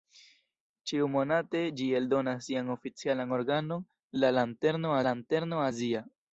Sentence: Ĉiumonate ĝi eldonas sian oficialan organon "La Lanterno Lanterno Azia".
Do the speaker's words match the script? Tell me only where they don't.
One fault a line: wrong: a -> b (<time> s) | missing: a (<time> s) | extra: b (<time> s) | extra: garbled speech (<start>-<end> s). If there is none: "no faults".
no faults